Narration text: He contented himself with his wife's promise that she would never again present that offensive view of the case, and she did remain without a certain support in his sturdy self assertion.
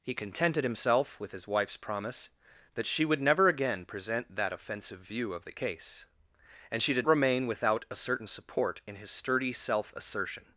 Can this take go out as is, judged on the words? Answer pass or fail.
pass